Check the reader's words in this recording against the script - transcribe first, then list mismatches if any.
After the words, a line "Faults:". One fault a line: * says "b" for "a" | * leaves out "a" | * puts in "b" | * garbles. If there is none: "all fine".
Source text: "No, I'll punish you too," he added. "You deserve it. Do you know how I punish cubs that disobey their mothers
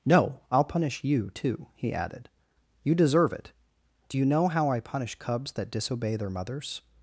"No, I'll punish you too," he added. "You deserve it. Do you know how I punish cubs that disobey their mothers
Faults:
all fine